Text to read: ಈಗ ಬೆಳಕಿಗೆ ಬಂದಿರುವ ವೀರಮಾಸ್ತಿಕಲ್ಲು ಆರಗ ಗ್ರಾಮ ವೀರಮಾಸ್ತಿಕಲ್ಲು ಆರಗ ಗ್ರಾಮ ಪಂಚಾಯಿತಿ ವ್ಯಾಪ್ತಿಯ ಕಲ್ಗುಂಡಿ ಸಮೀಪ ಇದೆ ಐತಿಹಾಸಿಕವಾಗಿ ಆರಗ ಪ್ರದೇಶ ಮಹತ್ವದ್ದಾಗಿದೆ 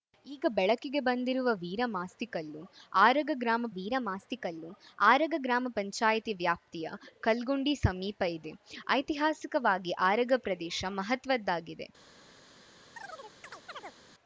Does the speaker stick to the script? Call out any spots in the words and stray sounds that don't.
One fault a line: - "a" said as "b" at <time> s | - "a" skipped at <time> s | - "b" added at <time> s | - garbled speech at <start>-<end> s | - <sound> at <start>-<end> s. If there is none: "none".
- chirp at 13.0-14.0 s